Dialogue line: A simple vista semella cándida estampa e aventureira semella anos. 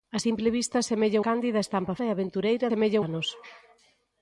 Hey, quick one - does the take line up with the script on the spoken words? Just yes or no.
yes